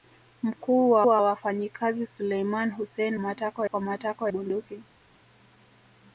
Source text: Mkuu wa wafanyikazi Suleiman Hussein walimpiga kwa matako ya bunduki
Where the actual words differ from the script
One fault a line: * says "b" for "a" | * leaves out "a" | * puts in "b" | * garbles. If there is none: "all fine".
* puts in "wa"
* says "matako" for "walimpiga"
* leaves out "ya"